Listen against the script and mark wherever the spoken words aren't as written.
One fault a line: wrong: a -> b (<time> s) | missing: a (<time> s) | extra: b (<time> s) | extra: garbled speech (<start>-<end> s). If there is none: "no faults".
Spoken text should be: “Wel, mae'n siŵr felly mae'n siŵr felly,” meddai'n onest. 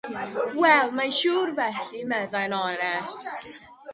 missing: mae'n siŵr felly (2.0 s)